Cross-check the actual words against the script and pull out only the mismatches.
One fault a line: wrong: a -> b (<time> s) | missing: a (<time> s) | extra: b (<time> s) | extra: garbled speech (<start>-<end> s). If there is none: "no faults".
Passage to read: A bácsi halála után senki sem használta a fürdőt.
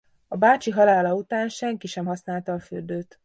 no faults